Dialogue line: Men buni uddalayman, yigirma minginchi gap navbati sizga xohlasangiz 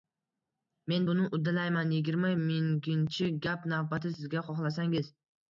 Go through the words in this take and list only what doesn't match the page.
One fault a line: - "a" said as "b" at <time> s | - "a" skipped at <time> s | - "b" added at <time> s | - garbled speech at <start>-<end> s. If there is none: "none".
none